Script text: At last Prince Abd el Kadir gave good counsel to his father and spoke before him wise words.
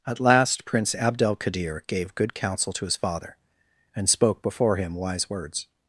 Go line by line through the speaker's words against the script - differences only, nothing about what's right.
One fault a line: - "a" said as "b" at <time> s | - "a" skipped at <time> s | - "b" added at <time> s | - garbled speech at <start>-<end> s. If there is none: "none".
none